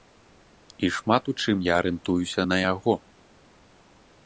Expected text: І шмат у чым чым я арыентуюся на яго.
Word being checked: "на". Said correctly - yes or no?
yes